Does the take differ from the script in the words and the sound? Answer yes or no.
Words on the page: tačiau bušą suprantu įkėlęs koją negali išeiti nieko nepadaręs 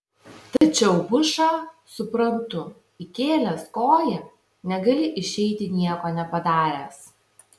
yes